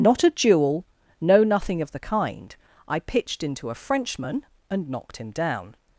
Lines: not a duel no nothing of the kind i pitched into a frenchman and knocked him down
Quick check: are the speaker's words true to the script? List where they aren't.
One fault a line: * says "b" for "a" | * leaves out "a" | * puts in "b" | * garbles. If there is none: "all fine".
all fine